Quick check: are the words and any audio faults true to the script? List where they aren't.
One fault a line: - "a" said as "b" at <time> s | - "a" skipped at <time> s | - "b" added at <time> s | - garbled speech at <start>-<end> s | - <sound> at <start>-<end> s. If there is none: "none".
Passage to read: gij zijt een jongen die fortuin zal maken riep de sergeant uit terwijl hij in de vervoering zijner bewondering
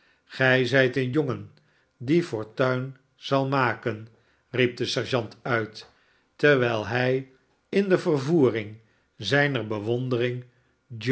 none